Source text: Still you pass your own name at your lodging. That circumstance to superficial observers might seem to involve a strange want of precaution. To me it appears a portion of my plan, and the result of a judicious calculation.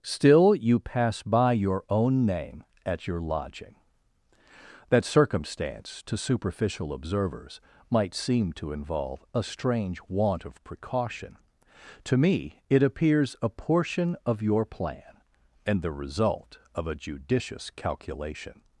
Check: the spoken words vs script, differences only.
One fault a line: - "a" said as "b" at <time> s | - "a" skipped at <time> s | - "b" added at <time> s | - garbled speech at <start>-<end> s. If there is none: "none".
- "by" added at 1.2 s
- "my" said as "your" at 14.4 s